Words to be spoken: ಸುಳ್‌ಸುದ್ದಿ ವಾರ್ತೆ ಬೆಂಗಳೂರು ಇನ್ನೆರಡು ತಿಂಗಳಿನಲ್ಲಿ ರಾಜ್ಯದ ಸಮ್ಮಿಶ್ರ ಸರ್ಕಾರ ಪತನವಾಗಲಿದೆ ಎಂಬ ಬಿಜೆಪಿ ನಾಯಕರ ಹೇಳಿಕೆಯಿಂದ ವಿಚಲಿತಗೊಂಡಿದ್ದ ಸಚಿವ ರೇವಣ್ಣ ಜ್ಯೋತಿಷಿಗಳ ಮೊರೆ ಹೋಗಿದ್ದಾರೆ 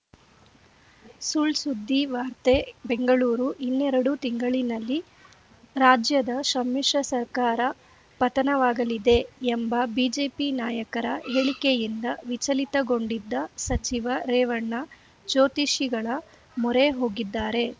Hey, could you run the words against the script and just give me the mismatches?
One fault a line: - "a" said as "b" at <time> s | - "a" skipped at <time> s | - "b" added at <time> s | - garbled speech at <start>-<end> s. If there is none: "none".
none